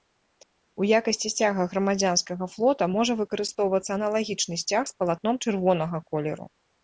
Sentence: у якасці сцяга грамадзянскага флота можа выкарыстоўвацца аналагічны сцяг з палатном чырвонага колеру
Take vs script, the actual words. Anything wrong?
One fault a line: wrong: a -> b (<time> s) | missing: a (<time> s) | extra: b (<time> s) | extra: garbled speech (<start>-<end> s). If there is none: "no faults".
no faults